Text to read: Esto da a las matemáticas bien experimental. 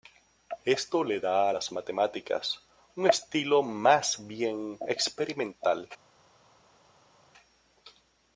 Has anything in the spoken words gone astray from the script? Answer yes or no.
yes